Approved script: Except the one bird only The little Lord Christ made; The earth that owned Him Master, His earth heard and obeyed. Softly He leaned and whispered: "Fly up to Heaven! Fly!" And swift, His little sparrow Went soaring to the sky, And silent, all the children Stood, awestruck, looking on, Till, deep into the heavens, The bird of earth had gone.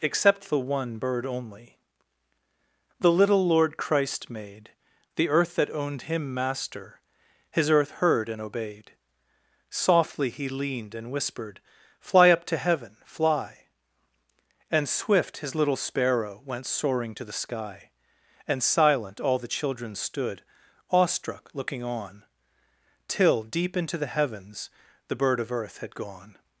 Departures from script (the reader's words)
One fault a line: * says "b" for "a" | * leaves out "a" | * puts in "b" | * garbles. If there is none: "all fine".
all fine